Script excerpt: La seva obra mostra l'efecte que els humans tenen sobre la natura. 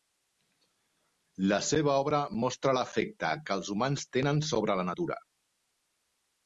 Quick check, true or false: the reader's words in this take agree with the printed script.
true